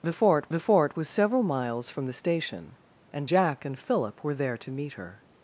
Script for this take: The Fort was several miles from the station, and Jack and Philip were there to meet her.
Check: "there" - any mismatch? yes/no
no